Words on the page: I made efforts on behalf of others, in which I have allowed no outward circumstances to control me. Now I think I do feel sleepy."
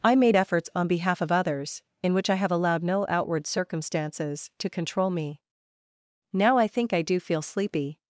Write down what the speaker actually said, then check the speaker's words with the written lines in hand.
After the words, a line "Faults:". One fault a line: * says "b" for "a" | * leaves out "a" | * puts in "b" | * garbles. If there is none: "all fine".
I made efforts on behalf of others, in which I have allowed no outward circumstances to control me. Now I think I do feel sleepy."
Faults:
all fine